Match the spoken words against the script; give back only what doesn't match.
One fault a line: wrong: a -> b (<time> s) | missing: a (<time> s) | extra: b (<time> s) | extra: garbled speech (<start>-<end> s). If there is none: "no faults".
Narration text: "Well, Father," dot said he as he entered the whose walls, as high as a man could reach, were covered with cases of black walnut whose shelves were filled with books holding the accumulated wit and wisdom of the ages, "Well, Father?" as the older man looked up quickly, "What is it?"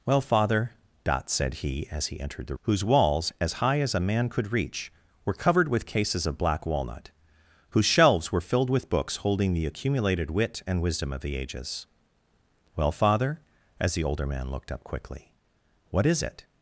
no faults